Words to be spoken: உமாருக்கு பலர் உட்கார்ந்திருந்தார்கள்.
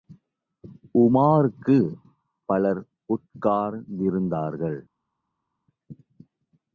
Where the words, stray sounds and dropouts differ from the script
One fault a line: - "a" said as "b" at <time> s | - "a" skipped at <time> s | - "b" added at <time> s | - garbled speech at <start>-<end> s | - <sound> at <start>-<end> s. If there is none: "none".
none